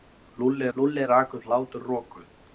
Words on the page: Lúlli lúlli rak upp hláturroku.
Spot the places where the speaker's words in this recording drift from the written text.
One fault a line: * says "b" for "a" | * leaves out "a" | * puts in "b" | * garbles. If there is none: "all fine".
all fine